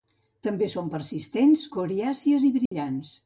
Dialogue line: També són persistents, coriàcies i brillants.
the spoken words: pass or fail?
pass